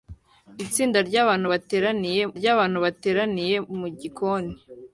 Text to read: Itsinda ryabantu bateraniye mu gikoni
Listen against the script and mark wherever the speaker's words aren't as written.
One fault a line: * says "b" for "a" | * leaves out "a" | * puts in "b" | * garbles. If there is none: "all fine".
* puts in "ryabantu bateraniye"